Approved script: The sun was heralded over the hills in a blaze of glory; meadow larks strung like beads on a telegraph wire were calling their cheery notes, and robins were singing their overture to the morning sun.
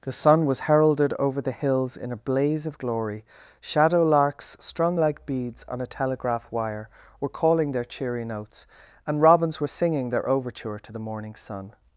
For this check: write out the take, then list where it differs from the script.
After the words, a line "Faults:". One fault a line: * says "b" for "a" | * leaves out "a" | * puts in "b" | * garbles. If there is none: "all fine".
The sun was heralded over the hills in a blaze of glory; shadow larks strung like beads on a telegraph wire were calling their cheery notes, and robins were singing their overture to the morning sun.
Faults:
* says "shadow" for "meadow"